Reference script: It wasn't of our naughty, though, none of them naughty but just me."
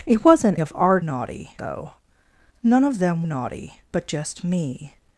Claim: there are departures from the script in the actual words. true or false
false